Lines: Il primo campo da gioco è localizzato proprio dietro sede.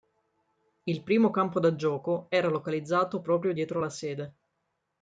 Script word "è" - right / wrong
wrong